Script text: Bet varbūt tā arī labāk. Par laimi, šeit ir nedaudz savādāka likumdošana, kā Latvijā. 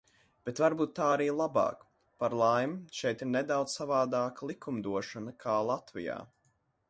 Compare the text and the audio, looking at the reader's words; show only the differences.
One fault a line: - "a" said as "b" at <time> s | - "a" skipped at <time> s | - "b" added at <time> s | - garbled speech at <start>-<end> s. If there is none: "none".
none